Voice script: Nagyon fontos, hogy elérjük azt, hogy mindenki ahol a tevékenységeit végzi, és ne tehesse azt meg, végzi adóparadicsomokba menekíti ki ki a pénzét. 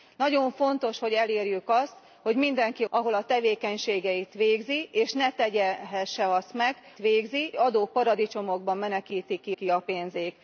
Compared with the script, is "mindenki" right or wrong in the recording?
right